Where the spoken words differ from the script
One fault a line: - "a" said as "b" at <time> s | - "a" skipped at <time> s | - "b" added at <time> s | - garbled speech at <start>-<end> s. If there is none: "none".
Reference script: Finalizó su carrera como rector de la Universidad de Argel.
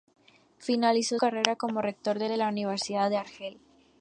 - "su" skipped at 1.2 s
- "de" added at 2.3 s